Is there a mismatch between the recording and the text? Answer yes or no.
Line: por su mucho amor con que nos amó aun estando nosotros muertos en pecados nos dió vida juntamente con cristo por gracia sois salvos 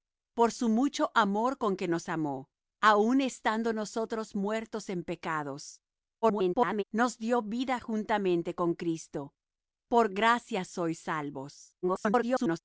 yes